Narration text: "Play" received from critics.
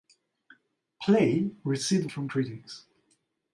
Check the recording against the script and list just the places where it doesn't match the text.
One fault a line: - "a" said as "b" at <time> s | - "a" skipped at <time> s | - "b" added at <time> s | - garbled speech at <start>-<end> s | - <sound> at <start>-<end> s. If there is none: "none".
none